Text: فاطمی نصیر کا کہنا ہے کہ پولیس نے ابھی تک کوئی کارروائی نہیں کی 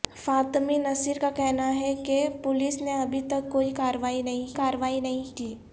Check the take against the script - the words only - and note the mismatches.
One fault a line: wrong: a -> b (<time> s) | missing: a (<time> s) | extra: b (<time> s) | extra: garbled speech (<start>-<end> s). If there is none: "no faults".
extra: کارروائی نہیں (4.5 s)